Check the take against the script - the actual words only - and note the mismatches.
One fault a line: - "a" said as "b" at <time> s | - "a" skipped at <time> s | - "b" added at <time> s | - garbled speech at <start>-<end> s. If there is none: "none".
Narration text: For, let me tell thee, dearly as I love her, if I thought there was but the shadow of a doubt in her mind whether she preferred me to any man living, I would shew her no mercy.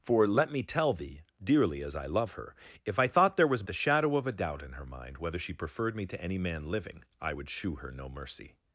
- "but" skipped at 3.6 s